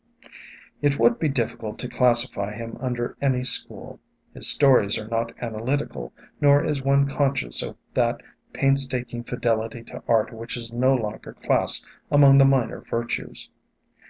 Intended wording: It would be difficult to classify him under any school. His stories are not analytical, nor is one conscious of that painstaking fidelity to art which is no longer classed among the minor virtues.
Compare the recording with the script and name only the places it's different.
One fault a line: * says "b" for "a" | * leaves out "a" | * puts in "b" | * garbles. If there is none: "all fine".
all fine